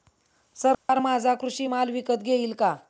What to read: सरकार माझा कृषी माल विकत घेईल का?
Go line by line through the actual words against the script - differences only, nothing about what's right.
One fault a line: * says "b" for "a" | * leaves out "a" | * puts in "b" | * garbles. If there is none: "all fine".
all fine